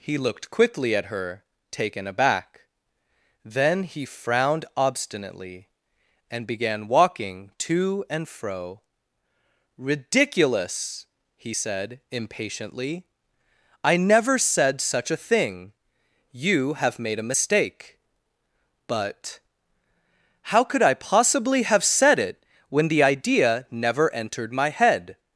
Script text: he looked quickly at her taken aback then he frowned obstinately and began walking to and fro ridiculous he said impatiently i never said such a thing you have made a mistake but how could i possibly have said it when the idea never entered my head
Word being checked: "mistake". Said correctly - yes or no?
yes